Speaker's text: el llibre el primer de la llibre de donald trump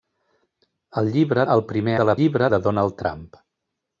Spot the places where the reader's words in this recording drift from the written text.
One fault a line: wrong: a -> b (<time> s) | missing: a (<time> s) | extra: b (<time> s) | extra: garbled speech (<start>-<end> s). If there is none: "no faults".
no faults